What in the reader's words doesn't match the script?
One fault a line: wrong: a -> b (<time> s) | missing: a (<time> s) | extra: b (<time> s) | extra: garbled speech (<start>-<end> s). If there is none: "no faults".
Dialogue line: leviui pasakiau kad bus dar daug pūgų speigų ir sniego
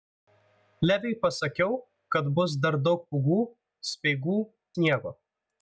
missing: ir (4.4 s)